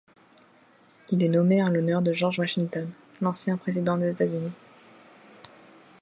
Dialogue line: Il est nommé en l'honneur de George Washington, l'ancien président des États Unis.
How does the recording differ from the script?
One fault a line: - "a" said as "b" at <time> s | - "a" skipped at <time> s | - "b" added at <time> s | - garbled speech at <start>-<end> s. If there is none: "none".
none